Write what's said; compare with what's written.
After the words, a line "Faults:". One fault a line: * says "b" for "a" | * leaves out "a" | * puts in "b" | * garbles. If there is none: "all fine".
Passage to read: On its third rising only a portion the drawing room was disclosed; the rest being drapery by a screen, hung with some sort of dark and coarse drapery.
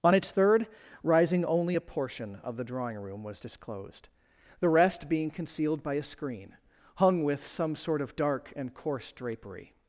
On its third rising only a portion of the drawing room was disclosed; the rest being concealed by a screen, hung with some sort of dark and coarse drapery.
Faults:
* puts in "of"
* says "concealed" for "drapery"